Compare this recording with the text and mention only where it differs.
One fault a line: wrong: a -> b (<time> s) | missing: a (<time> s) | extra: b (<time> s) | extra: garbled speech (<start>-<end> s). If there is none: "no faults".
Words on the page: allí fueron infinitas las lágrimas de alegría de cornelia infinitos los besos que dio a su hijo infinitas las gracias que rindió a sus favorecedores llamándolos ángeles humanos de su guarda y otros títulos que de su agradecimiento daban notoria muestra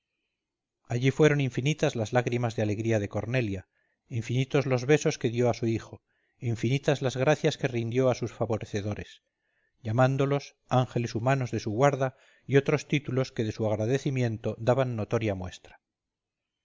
no faults